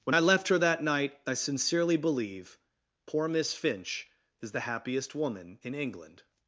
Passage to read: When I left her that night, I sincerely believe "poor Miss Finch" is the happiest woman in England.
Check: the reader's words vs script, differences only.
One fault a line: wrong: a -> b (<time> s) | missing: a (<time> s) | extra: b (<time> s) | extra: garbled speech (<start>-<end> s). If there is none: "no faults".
no faults